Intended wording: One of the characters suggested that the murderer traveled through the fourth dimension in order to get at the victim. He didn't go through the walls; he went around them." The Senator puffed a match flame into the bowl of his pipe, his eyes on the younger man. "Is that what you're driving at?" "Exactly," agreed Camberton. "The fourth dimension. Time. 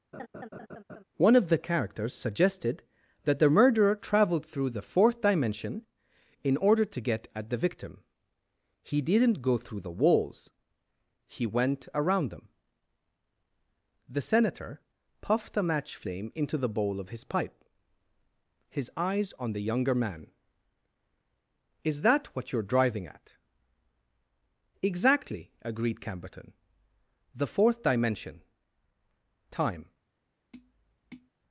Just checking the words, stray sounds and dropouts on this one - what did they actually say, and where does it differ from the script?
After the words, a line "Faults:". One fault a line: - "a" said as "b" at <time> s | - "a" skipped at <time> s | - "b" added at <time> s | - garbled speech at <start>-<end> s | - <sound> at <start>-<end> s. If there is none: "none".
One of the characters suggested that the murderer traveled through the fourth dimension in order to get at the victim. He didn't go through the walls; he went around them." The Senator puffed a match flame into the bowl of his pipe, his eyes on the younger man. "Is that what you're driving at?" "Exactly," agreed Camberton. "The fourth dimension. Time.
Faults:
- laugh at 0.1-1.0 s
- tap at 30.5-31.3 s